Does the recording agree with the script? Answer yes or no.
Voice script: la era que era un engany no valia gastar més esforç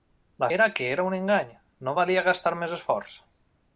yes